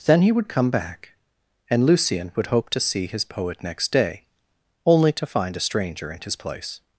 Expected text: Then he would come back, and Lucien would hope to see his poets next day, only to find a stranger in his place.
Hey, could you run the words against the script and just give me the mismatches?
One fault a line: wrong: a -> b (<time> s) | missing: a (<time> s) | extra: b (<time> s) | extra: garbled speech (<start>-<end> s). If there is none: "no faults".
wrong: poets -> poet (3.2 s)